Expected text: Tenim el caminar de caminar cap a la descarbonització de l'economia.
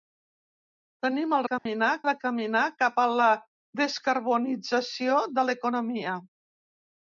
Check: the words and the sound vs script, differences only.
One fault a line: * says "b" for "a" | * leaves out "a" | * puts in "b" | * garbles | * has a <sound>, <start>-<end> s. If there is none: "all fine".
* has a dropout, 1.6-1.7 s